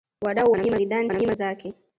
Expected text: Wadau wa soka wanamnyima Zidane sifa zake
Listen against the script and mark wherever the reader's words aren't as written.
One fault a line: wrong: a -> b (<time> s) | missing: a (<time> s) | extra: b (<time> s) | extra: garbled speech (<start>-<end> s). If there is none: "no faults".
missing: wa soka (0.5 s)
wrong: sifa -> wanamnyima (1.1 s)